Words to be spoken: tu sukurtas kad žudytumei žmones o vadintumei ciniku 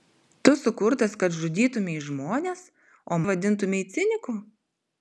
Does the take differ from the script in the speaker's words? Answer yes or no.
no